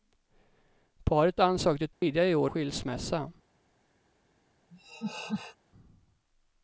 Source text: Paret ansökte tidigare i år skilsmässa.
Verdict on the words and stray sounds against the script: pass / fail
fail